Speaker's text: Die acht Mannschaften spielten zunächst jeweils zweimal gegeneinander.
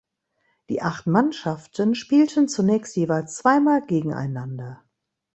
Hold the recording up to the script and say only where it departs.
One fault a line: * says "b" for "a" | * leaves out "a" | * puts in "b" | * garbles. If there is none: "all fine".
all fine